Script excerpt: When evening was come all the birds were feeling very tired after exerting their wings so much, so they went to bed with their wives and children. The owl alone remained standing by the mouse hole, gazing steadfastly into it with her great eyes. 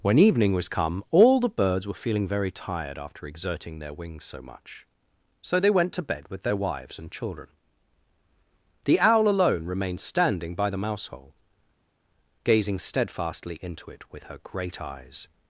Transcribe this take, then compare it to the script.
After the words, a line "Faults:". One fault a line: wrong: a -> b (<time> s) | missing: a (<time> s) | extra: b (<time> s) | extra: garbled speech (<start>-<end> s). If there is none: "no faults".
When evening was come all the birds were feeling very tired after exerting their wings so much, so they went to bed with their wives and children. The owl alone remained standing by the mouse hole, gazing steadfastly into it with her great eyes.
Faults:
no faults